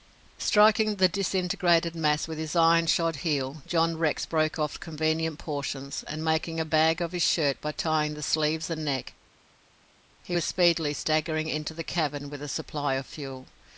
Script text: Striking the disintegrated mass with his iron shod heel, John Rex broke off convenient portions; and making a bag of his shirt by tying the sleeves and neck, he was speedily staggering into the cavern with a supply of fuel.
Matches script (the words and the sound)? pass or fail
pass